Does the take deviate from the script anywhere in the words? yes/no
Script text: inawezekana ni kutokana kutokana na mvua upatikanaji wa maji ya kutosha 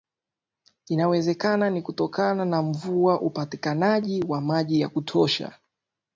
yes